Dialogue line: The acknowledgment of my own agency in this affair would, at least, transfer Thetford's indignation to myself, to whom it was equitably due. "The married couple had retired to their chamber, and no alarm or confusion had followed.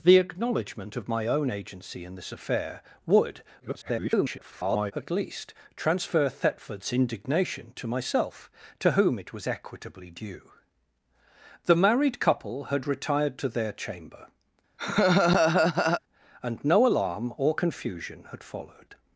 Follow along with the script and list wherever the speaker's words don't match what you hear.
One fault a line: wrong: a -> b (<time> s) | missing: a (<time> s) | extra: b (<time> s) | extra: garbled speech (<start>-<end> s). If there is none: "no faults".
extra: garbled speech (3.6-4.9 s)